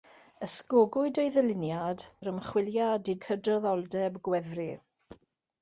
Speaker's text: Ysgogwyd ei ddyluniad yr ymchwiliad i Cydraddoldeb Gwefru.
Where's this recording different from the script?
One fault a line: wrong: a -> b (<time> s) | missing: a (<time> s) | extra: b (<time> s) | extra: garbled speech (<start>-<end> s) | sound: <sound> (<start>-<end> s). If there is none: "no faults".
no faults